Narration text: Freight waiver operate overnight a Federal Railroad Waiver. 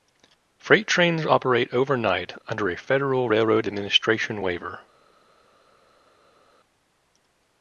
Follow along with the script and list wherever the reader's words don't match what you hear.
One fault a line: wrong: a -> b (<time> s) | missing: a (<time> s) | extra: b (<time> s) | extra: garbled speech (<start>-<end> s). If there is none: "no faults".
wrong: waiver -> trains (0.9 s)
extra: under (2.5 s)
extra: Administration (3.7 s)